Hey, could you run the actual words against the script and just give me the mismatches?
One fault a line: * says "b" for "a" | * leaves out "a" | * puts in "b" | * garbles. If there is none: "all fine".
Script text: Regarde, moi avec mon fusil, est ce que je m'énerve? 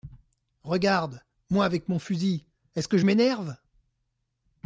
all fine